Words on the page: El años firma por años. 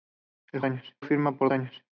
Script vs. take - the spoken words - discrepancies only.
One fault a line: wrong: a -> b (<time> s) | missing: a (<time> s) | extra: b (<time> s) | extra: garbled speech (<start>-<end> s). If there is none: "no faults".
no faults